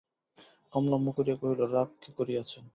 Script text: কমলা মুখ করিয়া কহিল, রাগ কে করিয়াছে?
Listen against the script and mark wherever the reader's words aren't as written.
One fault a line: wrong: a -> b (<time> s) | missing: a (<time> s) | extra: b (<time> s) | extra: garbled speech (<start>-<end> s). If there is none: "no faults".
no faults